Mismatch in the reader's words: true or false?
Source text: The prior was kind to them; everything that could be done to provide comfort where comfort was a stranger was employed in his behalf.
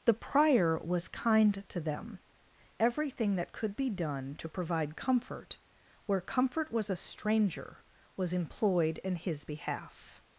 false